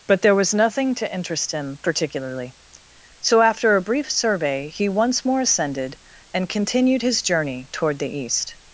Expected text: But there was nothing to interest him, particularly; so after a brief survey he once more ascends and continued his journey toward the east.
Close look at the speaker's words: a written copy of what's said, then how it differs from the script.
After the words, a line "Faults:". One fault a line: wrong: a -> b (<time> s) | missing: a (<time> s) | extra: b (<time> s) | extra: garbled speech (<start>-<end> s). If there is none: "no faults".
But there was nothing to interest him, particularly; so after a brief survey he once more ascended and continued his journey toward the east.
Faults:
wrong: ascends -> ascended (5.4 s)